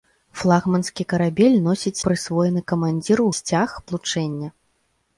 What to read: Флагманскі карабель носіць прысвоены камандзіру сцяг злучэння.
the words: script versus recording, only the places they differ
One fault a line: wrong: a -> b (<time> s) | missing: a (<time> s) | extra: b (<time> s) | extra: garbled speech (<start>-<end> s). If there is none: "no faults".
no faults